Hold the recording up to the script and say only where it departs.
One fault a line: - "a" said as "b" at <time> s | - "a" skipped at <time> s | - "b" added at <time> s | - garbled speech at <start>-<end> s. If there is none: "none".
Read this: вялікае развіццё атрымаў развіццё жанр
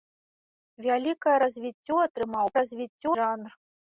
none